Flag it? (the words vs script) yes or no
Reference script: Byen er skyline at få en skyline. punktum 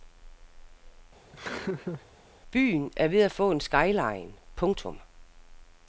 yes